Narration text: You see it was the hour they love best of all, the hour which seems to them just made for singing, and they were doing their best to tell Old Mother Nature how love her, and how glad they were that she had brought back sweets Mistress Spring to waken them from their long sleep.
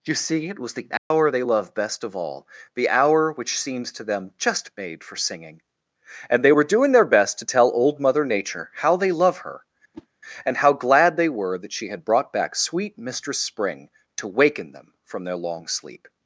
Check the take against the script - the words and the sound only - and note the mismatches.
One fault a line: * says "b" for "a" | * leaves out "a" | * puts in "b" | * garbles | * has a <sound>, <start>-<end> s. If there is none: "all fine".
* has a dropout, 1.0-1.1 s
* puts in "they"
* has a whoosh, 9.9-10.1 s
* says "sweet" for "sweets"